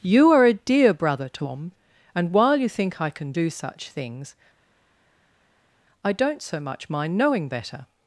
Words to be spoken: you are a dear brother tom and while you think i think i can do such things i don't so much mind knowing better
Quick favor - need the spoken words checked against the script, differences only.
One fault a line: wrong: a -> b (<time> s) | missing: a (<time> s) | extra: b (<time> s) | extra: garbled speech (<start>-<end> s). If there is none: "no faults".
missing: think i (3.1 s)